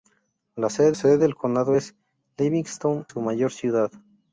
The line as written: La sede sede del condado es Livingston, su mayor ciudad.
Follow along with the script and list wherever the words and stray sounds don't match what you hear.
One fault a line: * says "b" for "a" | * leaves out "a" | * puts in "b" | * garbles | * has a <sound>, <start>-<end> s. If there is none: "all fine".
all fine